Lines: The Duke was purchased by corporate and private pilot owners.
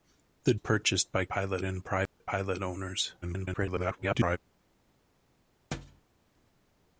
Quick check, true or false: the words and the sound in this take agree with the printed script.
false